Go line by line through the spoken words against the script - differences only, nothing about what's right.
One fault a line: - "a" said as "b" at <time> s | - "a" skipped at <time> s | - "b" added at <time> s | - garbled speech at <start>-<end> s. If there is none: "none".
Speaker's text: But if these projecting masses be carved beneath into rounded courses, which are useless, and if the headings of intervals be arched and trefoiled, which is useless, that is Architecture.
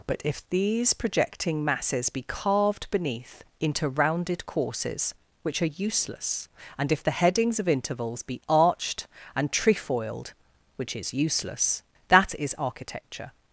none